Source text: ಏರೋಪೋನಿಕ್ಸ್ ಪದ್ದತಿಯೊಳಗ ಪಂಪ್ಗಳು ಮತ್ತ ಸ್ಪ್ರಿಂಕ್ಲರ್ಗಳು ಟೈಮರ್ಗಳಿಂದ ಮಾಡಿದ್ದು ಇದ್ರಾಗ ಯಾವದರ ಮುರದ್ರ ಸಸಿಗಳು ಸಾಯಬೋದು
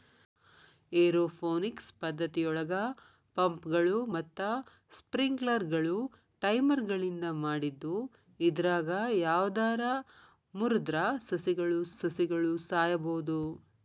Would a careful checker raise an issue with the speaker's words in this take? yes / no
yes